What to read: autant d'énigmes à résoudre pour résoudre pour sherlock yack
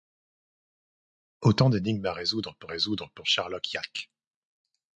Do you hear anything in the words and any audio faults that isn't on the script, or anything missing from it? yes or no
no